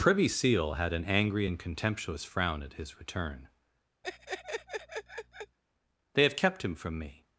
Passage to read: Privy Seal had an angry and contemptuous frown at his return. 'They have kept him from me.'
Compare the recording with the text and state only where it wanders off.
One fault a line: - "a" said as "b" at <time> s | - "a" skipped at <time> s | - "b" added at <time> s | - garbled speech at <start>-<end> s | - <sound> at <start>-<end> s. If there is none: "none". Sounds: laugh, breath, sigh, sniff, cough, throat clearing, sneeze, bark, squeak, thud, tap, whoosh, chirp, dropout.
- laugh at 4.0-5.6 s